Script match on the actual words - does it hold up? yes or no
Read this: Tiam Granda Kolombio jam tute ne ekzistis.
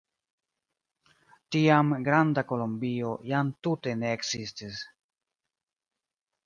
yes